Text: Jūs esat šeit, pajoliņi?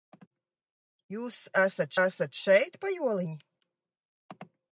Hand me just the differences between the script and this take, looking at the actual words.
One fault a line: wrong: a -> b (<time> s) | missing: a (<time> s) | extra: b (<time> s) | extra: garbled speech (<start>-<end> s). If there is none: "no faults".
extra: esat (2.1 s)